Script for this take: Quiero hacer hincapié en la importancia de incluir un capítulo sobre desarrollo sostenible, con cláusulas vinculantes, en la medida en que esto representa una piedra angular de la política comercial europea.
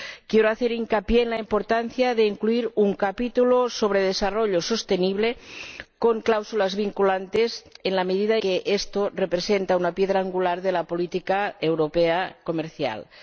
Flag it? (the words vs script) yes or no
yes